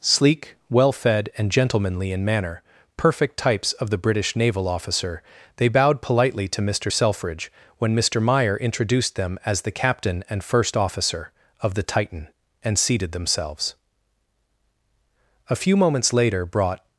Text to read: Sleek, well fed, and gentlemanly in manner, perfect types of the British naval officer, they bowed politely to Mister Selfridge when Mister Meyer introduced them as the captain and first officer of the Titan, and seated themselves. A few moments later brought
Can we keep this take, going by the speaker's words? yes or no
yes